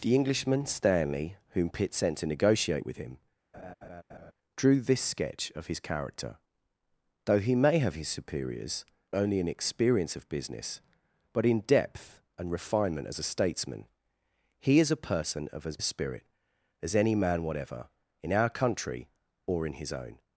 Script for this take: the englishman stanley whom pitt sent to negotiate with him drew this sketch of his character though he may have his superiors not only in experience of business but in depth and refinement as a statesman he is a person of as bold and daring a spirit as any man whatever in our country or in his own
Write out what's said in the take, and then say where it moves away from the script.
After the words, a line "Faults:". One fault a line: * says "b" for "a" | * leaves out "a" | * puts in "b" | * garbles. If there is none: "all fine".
the englishman stanley whom pitt sent to negotiate with him drew this sketch of his character though he may have his superiors only in experience of business but in depth and refinement as a statesman he is a person of as a spirit as any man whatever in our country or in his own
Faults:
* leaves out "not"
* leaves out "bold and daring"